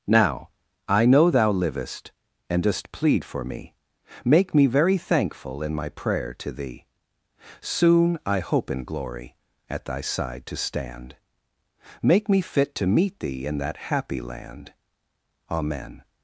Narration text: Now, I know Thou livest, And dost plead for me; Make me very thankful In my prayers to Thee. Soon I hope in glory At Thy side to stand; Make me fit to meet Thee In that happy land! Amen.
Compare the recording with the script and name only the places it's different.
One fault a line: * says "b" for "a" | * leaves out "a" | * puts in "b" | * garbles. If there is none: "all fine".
* says "prayer" for "prayers"